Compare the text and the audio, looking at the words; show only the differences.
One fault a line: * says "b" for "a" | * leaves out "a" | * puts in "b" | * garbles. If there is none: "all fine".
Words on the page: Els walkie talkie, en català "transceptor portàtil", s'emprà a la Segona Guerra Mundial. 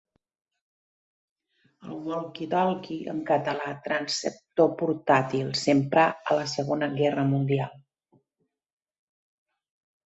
* says "El" for "Els"